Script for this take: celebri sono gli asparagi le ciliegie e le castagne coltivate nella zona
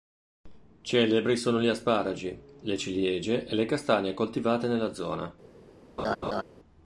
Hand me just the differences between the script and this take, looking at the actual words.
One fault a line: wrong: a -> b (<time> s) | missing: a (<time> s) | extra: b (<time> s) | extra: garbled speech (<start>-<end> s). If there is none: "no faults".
no faults